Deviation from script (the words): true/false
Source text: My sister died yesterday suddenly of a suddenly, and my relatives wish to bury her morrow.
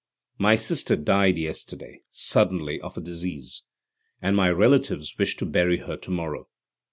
true